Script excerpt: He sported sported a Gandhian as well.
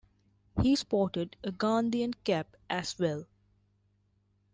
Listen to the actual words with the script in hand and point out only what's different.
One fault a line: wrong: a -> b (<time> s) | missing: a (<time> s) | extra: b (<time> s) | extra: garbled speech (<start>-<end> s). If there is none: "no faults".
missing: sported (1.3 s)
extra: cap (2.2 s)